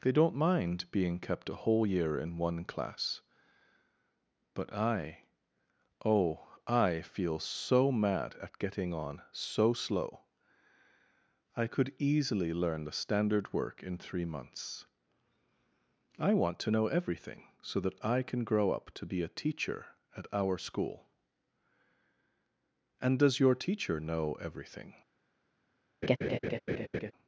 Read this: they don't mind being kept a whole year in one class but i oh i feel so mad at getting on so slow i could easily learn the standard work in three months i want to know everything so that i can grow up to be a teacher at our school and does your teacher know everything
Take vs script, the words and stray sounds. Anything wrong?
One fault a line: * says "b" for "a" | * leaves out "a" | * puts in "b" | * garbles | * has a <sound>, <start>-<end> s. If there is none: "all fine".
* has a laugh, 26.0-27.1 s